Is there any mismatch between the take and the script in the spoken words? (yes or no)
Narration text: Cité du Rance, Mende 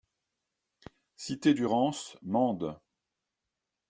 no